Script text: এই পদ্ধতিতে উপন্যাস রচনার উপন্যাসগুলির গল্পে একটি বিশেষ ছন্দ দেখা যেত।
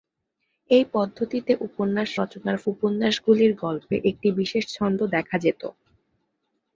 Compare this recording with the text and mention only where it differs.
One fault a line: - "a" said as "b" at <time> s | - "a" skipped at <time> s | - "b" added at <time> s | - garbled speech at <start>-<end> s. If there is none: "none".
none